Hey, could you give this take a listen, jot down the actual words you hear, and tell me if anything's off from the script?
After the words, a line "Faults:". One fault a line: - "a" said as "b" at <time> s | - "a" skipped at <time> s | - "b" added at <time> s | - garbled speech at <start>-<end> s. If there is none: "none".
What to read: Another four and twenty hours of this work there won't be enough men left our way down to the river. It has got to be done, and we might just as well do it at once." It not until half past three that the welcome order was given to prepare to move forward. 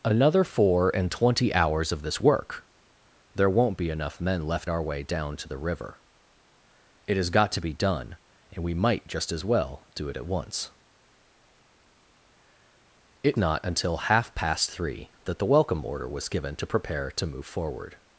Another four and twenty hours of this work there won't be enough men left our way down to the river. It has got to be done, and we might just as well do it at once." It not until half past three that the welcome order was given to prepare to move forward.
Faults:
none